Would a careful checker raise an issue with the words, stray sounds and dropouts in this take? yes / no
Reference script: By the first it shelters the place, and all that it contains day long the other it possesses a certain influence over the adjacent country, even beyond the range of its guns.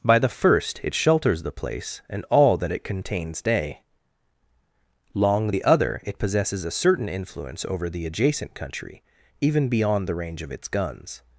no